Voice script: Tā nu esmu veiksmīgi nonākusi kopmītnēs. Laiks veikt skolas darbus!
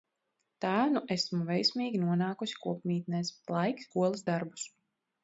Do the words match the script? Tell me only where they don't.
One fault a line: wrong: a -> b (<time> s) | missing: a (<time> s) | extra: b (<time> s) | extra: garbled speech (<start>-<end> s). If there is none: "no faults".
missing: veikt (3.9 s)